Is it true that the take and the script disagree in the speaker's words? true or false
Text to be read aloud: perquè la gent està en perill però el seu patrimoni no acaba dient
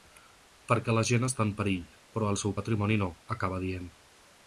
false